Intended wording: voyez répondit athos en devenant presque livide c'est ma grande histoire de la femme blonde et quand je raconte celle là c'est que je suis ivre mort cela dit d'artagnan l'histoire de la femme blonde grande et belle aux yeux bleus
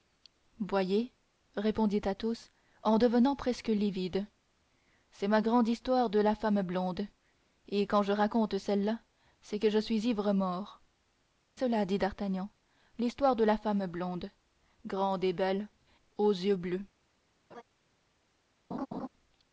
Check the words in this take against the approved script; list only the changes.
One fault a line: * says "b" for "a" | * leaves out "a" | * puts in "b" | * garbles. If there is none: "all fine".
all fine